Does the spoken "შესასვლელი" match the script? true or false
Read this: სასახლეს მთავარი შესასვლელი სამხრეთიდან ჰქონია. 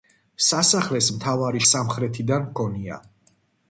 false